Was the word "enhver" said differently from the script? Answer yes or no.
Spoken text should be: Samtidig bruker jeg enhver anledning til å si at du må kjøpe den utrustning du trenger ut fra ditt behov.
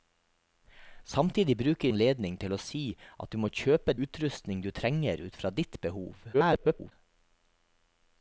yes